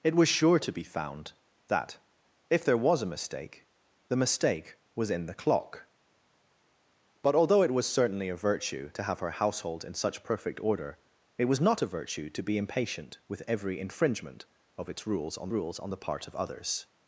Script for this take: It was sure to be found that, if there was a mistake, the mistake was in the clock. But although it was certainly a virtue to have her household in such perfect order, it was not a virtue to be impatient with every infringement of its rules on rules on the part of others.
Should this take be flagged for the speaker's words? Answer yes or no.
no